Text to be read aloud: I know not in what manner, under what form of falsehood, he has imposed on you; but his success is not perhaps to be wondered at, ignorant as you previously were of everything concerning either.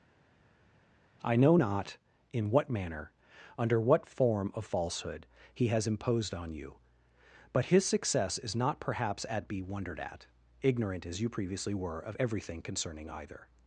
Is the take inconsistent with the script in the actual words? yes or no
yes